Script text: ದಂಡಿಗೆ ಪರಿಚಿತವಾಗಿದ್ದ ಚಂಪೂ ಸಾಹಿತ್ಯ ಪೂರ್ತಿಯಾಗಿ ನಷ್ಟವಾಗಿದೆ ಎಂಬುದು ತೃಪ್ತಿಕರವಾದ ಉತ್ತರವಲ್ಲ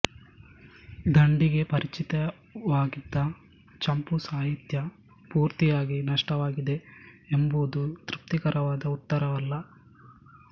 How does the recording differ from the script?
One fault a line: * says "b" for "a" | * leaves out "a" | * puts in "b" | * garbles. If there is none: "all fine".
all fine